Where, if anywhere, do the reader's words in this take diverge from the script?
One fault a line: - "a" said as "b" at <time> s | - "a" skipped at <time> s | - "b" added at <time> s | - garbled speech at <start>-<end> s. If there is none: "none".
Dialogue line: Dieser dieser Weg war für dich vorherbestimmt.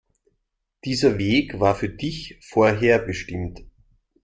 - "dieser" skipped at 1.2 s